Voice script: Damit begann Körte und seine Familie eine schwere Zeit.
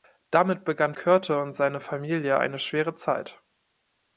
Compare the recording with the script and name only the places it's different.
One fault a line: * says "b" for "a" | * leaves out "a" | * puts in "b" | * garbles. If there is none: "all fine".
all fine